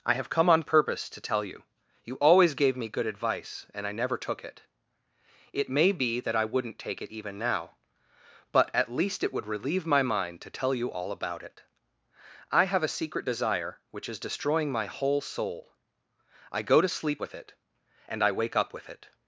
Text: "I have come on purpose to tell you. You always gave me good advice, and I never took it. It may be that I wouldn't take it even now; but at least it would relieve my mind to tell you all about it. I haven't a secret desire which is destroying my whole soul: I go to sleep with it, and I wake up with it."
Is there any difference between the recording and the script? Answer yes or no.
yes